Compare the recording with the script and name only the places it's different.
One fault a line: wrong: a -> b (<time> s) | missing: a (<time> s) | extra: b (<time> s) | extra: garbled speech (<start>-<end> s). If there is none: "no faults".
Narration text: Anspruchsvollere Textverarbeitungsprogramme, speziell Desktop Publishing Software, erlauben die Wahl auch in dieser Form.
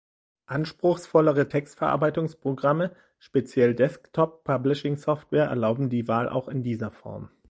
no faults